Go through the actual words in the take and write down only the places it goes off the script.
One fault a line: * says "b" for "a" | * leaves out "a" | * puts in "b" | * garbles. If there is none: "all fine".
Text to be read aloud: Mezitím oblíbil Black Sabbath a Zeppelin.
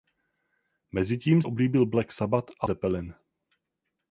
all fine